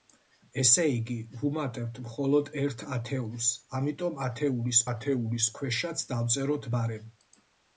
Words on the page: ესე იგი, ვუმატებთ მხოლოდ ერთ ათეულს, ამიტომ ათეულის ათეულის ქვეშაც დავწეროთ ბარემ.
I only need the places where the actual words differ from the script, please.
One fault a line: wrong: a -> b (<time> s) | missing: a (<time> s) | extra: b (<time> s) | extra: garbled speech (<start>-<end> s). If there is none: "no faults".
no faults